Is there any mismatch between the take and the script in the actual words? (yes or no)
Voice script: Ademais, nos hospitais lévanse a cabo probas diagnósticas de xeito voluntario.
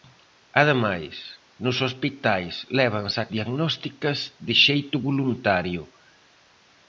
yes